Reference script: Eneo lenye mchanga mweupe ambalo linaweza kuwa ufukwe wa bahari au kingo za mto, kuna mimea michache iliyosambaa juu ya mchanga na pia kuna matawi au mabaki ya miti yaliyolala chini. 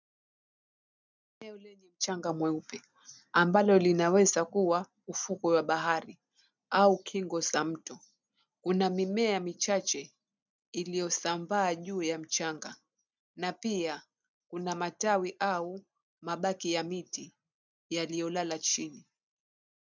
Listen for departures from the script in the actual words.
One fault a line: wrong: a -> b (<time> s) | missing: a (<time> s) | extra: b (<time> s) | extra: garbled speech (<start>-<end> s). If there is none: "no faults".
no faults